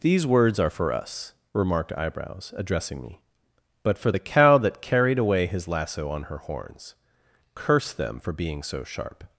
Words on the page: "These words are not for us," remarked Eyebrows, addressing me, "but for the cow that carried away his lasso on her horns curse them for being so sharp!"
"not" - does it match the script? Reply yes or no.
no